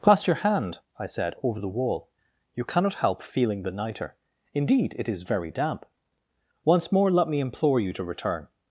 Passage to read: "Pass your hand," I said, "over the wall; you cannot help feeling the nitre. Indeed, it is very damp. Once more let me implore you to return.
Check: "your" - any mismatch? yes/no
no